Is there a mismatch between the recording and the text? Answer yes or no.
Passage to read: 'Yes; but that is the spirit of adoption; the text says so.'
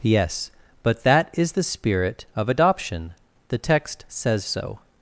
no